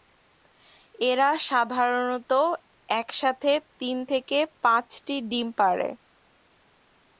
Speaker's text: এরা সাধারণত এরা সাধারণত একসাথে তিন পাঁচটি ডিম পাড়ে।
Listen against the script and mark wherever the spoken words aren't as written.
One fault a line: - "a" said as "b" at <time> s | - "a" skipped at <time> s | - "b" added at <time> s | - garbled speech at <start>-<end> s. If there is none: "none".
- "এরা সাধারণত" skipped at 2.3 s
- "থেকে" added at 4.1 s